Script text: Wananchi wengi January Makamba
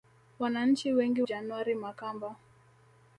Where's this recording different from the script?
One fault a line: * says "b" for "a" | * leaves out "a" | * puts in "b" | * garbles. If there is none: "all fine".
all fine